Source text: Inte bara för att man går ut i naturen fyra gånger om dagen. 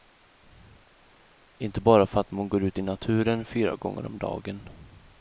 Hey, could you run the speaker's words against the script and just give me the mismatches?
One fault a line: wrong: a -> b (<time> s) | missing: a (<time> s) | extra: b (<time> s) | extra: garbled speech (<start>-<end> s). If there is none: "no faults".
no faults